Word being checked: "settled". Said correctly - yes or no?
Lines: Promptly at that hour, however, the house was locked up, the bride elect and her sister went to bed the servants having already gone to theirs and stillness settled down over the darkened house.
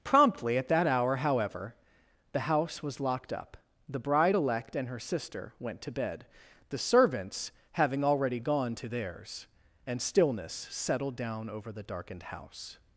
yes